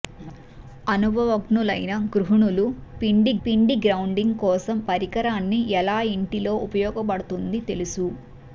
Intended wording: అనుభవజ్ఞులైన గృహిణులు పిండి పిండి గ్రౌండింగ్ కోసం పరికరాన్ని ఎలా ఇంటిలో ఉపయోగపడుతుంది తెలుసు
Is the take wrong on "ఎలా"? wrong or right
right